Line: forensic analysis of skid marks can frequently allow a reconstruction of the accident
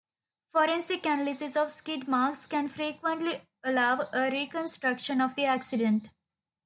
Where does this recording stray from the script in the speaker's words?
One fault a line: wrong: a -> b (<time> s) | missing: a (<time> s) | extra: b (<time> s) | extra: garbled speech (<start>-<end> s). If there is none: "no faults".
no faults